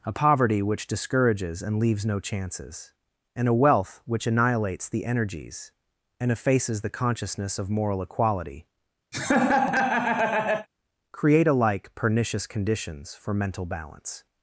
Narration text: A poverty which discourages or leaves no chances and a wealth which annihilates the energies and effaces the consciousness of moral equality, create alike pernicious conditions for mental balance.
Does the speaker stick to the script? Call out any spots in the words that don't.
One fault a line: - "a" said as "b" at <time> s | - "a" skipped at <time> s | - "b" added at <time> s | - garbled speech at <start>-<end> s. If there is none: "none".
- "or" said as "and" at 1.6 s